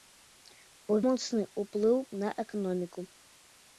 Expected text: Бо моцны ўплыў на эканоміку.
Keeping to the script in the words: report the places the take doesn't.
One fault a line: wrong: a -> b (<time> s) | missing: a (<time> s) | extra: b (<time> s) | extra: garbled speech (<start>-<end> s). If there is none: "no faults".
no faults